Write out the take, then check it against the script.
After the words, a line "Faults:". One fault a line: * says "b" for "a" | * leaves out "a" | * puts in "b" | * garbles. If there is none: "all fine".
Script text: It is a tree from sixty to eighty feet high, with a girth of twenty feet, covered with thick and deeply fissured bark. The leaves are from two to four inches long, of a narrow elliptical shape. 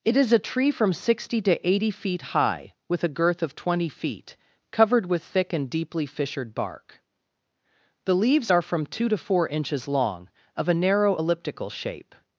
It is a tree from sixty to eighty feet high, with a girth of twenty feet, covered with thick and deeply fissured bark. The leaves are from two to four inches long, of a narrow elliptical shape.
Faults:
all fine